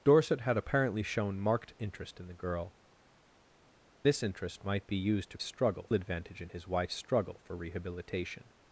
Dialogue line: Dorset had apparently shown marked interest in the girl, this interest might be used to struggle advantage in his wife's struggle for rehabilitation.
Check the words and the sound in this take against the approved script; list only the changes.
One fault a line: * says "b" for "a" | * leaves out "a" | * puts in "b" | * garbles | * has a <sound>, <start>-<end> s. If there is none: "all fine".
all fine